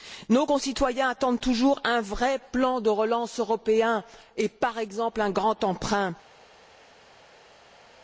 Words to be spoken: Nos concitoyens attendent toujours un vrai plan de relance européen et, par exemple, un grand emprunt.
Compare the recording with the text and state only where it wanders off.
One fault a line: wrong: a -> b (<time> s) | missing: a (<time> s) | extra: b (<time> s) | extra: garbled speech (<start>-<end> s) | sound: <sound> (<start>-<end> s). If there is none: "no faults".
no faults